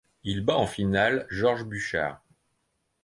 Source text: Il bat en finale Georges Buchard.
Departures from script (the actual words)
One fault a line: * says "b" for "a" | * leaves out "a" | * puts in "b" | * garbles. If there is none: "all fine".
all fine